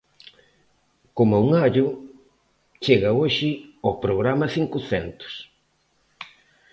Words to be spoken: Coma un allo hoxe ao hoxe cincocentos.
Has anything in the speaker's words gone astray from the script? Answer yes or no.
yes